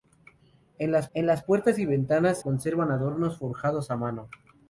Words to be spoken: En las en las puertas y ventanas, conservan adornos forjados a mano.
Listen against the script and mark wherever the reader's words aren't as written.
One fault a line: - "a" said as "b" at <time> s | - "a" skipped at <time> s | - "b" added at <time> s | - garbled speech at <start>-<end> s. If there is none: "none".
none